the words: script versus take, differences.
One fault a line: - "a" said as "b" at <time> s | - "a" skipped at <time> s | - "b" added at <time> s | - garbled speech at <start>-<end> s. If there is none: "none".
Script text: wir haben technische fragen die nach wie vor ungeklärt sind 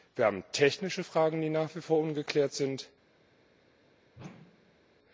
none